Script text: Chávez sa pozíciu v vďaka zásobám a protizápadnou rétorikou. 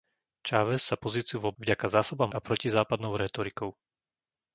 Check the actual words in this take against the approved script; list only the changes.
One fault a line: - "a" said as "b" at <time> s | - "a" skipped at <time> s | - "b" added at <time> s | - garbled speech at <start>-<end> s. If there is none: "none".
none